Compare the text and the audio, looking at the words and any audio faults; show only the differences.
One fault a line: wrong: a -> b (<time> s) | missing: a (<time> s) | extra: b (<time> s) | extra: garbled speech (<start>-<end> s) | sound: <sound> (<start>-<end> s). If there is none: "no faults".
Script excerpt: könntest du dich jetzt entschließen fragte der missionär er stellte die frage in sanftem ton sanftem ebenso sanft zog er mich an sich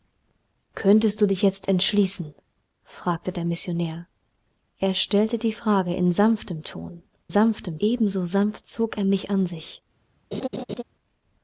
sound: laugh (10.3-10.8 s)